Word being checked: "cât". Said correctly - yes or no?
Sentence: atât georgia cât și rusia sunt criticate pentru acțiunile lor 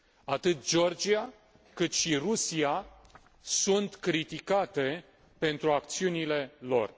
yes